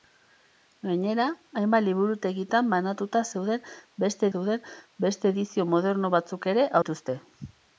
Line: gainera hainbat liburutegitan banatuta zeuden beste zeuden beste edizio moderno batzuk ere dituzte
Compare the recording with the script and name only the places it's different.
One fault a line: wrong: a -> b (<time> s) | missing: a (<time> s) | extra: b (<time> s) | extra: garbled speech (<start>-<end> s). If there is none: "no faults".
no faults